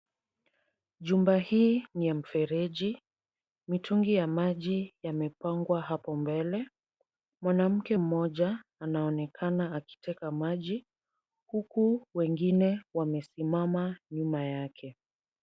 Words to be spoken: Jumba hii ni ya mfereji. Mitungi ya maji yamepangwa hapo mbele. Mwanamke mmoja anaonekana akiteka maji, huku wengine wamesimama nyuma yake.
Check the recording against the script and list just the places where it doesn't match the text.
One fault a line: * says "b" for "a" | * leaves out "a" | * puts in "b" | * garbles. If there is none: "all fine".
all fine